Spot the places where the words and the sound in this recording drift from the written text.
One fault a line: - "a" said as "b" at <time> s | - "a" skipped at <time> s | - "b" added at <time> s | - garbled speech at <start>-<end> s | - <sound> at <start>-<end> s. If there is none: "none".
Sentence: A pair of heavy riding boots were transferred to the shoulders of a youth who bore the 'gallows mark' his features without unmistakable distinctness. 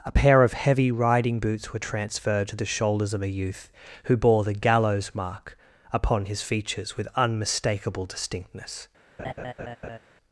- "upon" added at 5.9 s
- "without" said as "with" at 7.0 s
- laugh at 9.2-10.0 s